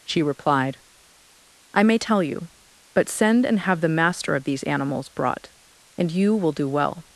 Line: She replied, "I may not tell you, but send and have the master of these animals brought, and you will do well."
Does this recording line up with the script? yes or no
no